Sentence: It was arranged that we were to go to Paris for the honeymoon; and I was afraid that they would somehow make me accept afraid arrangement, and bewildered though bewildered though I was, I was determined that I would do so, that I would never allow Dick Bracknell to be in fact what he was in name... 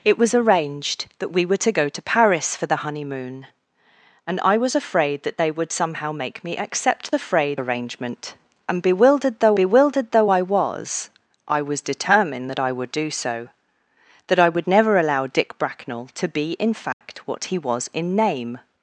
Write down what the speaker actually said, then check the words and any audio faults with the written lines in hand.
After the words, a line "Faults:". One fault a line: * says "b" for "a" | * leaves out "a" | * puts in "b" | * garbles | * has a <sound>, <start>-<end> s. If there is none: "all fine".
It was arranged that we were to go to Paris for the honeymoon; and I was afraid that they would somehow make me accept afraid arrangement, and bewildered though bewildered though I was, I was determined that I would do so, that I would never allow Dick Bracknell to be in fact what he was in name...
Faults:
* has a dropout, 16.9-17.0 s